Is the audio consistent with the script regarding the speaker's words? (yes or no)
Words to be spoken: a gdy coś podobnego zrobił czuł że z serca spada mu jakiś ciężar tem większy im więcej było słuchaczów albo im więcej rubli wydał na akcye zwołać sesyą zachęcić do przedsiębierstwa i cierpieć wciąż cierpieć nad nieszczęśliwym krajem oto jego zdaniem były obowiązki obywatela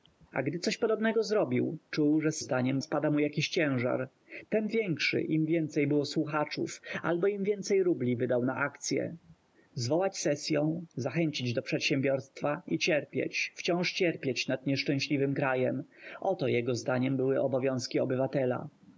no